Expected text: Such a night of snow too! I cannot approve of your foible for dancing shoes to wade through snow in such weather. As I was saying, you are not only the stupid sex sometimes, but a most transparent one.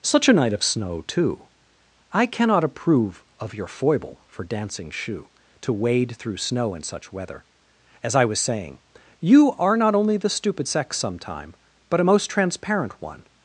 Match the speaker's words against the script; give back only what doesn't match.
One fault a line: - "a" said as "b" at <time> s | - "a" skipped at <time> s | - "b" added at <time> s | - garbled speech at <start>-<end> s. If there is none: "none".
- "shoes" said as "shoe" at 4.9 s
- "sometimes" said as "sometime" at 11.0 s